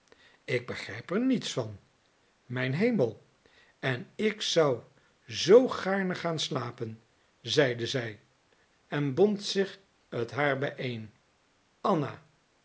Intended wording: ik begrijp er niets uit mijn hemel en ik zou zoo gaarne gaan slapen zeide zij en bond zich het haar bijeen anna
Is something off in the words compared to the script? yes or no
yes